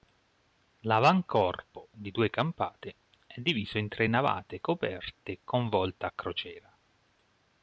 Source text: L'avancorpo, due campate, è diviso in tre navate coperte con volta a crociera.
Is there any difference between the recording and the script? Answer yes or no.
yes